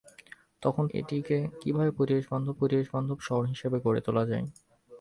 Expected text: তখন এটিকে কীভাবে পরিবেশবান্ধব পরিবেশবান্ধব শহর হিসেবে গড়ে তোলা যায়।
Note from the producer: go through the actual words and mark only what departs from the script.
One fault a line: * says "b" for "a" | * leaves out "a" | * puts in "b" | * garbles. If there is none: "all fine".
all fine